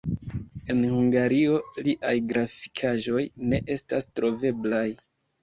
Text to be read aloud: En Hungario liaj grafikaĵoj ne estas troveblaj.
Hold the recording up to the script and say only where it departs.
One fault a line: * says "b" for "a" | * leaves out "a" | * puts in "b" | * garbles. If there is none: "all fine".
all fine